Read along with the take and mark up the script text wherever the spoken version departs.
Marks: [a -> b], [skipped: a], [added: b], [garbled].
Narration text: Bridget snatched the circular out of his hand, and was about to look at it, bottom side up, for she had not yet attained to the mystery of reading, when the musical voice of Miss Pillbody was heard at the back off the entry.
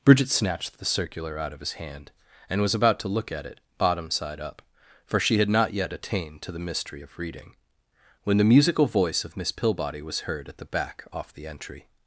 Bridget snatched the circular out of his hand, and was about to look at it, bottom side up, for she had not yet attained to the mystery of reading, when the musical voice of Miss Pillbody was heard at the back off the entry.